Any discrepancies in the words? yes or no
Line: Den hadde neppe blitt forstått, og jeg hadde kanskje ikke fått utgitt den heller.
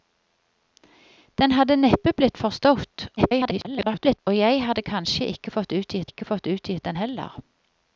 yes